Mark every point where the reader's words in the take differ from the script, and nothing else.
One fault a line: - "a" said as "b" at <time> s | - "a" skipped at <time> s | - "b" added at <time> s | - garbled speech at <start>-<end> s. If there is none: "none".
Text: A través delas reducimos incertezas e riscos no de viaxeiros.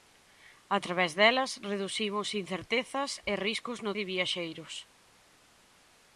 none